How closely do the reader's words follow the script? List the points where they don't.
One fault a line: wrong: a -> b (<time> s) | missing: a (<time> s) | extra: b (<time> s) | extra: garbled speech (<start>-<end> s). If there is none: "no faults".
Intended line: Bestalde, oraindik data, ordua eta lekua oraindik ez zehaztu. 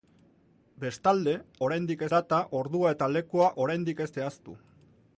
no faults